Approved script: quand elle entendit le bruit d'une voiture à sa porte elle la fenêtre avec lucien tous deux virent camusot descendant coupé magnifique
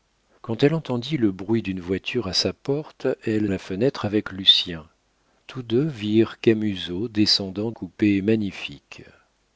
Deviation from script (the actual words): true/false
false